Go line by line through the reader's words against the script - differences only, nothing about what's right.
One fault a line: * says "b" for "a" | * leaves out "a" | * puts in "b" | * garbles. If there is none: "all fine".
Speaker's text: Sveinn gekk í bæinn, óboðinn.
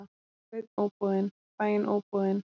* says "óboðinn" for "gekk"